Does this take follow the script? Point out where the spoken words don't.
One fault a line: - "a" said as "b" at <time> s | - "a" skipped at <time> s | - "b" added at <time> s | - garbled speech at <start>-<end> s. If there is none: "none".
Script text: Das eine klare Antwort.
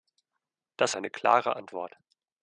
none